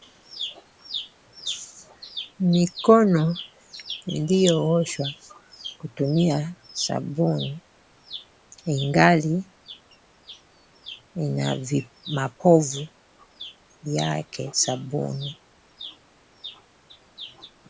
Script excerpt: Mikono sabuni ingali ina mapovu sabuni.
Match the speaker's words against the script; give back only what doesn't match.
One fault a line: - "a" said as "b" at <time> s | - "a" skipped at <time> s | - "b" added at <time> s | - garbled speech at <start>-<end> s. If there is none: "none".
- "iliyooshwa kutumia" added at 4.2 s
- "yake" added at 13.8 s